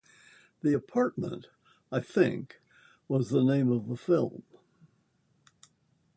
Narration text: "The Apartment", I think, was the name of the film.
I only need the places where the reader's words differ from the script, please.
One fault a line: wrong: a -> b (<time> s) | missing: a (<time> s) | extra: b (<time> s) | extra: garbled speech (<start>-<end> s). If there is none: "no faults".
no faults